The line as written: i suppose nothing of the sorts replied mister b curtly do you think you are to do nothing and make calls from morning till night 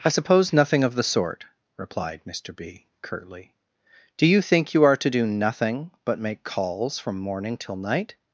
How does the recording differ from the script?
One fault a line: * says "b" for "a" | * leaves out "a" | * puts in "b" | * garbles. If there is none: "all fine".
* says "sort" for "sorts"
* says "but" for "and"